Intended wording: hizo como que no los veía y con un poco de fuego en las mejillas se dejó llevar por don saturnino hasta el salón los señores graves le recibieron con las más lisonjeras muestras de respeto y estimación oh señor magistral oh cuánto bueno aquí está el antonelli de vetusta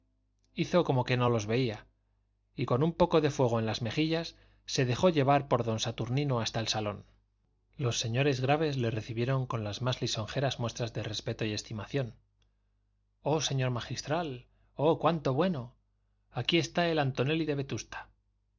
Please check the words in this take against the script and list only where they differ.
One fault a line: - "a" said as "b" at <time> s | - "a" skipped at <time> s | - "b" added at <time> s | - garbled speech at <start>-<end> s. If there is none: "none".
none